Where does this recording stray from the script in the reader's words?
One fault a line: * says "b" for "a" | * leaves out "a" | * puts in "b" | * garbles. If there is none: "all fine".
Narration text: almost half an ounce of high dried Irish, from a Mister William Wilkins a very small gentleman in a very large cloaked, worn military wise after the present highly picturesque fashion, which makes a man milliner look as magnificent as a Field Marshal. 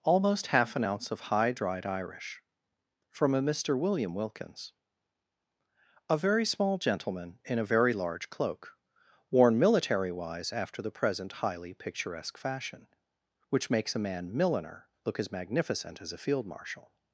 * says "cloak" for "cloaked"